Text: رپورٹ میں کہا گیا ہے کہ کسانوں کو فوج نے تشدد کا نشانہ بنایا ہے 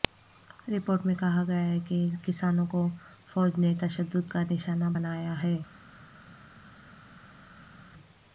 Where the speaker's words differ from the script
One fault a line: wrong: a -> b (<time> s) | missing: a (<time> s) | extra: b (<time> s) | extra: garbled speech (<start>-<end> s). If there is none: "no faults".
no faults